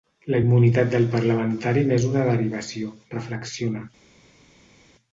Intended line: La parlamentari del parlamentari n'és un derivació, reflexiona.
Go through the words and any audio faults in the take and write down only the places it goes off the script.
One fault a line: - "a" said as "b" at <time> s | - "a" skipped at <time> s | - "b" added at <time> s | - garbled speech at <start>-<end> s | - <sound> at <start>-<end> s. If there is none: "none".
- "parlamentari" said as "immunitat" at 0.4 s
- "un" said as "una" at 2.1 s